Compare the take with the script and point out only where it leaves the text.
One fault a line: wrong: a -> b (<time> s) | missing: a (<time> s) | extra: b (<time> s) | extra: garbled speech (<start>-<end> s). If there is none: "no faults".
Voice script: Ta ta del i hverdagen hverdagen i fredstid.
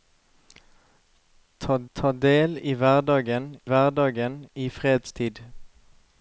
no faults